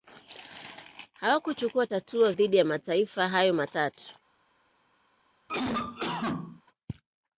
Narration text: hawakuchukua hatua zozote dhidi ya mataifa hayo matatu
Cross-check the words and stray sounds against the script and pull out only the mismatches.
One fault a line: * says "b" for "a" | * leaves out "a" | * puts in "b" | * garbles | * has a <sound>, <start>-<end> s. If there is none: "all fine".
* leaves out "zozote"
* has a cough, 5.5-6.6 s